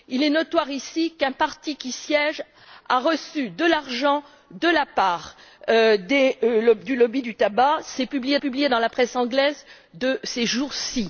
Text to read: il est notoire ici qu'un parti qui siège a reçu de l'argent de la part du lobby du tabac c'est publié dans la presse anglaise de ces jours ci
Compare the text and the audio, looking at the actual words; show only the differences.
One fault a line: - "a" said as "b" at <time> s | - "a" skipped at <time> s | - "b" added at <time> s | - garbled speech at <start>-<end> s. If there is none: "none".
- "publié" added at 8.4 s